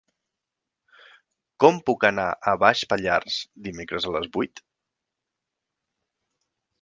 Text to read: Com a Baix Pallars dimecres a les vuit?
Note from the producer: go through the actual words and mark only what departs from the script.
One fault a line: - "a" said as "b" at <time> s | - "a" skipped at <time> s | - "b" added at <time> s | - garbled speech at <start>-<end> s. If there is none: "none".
- "puc anar" added at 1.9 s